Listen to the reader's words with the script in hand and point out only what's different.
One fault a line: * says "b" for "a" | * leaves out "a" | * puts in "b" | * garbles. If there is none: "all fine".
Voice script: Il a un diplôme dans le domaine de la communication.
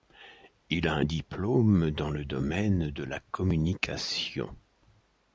all fine